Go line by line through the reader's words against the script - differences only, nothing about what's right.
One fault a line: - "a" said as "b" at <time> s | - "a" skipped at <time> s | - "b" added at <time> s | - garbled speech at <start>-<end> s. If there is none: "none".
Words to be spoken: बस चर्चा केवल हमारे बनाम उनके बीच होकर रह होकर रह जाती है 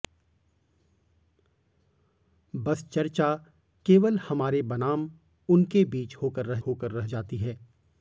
none